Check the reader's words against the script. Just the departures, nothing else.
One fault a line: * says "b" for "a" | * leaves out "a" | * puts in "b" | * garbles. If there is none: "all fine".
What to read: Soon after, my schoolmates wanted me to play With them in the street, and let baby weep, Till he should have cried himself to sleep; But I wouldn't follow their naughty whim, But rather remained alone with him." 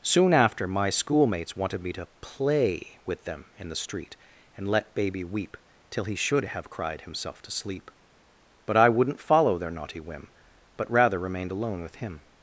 all fine